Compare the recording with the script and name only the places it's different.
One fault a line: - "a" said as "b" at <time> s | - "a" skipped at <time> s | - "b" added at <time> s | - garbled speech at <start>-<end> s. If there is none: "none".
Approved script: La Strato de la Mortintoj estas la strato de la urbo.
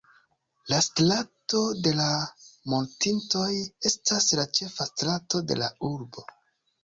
- "ĉefa" added at 4.6 s